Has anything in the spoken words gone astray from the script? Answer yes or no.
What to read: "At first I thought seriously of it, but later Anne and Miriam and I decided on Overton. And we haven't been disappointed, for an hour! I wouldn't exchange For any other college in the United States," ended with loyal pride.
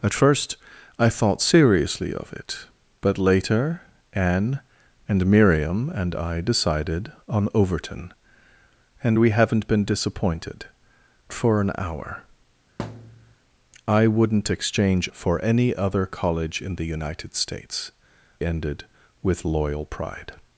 no